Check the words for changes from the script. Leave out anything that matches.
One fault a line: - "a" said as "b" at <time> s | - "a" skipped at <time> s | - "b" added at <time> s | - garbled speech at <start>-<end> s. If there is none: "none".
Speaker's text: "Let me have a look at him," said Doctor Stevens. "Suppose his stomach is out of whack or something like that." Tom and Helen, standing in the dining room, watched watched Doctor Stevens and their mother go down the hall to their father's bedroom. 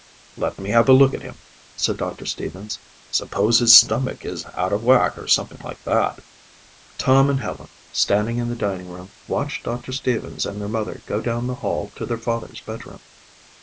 - "watched" skipped at 9.6 s